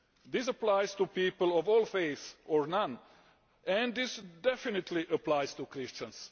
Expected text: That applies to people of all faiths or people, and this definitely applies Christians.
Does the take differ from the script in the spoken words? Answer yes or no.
yes